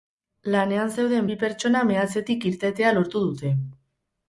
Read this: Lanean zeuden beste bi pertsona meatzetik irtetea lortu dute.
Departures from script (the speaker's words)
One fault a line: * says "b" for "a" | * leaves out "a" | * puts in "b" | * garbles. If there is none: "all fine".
* leaves out "beste"